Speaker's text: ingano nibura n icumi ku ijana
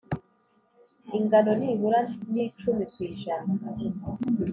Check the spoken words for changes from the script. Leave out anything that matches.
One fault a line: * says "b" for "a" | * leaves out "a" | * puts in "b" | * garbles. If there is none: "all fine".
all fine